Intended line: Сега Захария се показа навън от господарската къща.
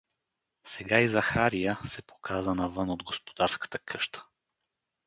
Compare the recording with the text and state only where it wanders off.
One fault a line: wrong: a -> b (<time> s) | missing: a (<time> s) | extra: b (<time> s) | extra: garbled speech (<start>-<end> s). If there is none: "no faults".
extra: и (1.0 s)